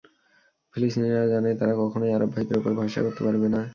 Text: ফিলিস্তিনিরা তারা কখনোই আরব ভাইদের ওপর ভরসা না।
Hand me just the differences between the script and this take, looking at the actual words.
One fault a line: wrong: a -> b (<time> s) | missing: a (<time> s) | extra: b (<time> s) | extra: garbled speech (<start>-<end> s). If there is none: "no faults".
extra: জানে (1.3 s)
extra: করতে পারবে (3.0 s)